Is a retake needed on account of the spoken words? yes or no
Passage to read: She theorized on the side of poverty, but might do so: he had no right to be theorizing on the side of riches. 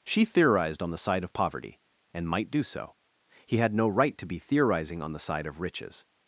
yes